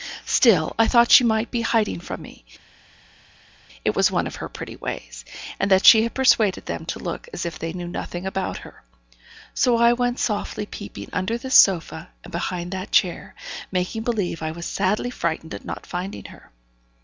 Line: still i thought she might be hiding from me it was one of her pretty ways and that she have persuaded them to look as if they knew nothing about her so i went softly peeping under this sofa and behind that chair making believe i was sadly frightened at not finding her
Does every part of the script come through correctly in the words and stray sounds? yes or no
no